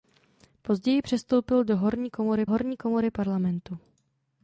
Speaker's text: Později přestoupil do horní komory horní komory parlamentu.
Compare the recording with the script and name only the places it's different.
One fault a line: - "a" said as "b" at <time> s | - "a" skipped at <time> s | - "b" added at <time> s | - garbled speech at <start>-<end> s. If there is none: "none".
none